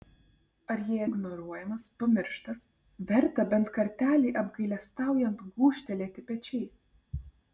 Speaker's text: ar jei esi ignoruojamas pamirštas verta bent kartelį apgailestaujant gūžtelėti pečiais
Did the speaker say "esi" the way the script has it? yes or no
no